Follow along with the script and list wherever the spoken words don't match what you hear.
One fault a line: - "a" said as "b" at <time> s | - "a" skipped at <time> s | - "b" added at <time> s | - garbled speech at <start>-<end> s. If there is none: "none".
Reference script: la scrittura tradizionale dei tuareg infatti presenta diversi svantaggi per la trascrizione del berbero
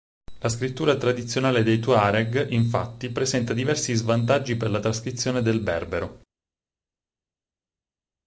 none